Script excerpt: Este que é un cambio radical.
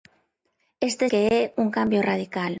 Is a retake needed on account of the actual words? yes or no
no